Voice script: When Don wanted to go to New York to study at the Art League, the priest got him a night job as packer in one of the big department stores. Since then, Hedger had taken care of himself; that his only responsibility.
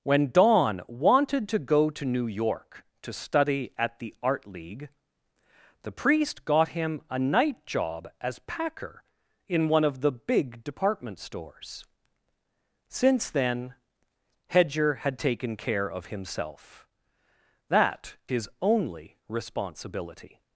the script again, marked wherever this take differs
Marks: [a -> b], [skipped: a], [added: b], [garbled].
When Don wanted to go to New York to study at the Art League, the priest got him a night job as packer in one of the big department stores. Since then, Hedger had taken care of himself; that his only responsibility.